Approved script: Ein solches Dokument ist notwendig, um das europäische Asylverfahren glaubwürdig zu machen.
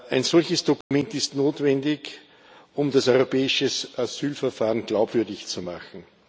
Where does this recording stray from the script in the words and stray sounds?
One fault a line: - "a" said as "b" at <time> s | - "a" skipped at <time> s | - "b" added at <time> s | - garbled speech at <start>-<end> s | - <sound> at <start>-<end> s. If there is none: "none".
- dropout at 0.8-0.9 s